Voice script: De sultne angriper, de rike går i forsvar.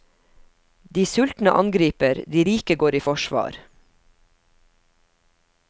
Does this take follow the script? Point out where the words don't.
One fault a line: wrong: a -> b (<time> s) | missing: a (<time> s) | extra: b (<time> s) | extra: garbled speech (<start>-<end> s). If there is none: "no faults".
no faults